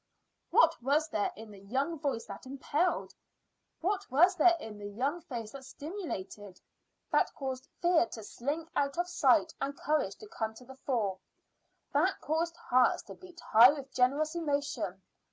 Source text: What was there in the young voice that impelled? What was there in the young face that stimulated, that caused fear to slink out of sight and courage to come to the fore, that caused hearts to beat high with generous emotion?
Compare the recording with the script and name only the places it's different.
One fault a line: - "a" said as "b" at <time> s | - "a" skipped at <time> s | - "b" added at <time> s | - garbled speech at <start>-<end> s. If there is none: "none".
none